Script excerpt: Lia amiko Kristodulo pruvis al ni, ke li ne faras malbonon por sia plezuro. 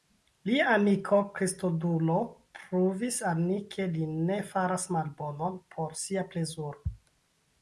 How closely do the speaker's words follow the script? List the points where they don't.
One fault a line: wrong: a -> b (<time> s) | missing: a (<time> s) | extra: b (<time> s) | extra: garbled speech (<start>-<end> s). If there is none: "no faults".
no faults